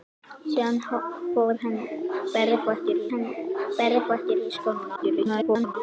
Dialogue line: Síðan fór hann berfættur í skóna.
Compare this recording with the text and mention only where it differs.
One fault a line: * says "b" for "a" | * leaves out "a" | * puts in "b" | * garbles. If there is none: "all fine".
* puts in "hann berfættur"
* garbles